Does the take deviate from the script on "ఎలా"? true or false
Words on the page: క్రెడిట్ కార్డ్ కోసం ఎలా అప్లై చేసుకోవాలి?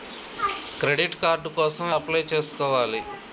true